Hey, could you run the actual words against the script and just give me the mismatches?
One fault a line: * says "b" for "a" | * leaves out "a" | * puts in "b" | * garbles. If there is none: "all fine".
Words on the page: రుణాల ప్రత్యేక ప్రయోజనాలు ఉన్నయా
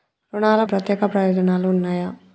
all fine